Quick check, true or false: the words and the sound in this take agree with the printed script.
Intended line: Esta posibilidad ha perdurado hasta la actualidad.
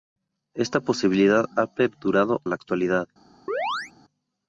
false